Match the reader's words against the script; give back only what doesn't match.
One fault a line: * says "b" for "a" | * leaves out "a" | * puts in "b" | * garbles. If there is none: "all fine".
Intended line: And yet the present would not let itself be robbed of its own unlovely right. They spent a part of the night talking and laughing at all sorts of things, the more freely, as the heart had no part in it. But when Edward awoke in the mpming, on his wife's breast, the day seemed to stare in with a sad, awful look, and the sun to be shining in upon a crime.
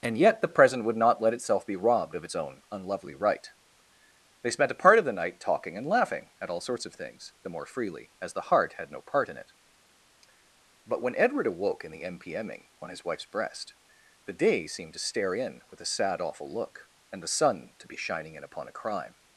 all fine